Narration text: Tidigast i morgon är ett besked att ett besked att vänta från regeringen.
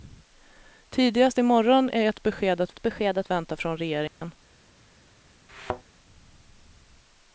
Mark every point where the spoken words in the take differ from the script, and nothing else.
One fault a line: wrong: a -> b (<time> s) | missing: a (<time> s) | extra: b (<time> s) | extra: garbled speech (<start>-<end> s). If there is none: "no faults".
no faults